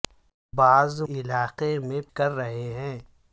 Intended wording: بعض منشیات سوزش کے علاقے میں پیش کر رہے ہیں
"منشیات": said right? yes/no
no